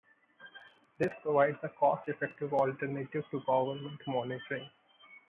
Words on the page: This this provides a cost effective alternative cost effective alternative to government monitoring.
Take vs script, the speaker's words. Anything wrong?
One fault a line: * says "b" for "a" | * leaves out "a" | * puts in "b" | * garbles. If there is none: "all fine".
* leaves out "this"
* leaves out "cost effective alternative"